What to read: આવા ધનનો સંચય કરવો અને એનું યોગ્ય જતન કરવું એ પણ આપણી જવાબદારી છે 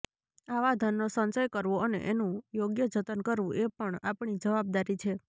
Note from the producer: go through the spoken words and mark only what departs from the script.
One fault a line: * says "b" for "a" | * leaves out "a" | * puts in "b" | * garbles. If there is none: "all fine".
all fine